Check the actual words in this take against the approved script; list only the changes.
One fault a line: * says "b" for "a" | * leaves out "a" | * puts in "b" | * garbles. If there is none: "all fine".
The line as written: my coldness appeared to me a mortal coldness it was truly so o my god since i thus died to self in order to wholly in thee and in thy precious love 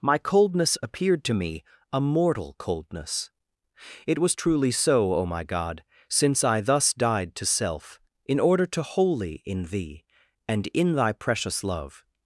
all fine